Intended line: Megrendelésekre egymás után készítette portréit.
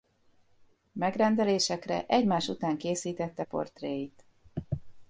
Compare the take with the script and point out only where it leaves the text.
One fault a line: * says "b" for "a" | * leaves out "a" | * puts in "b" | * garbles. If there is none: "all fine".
all fine